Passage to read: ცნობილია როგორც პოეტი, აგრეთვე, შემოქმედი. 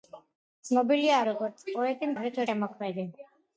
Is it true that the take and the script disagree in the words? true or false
false